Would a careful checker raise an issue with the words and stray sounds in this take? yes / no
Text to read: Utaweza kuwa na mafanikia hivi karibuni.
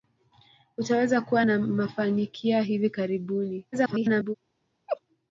yes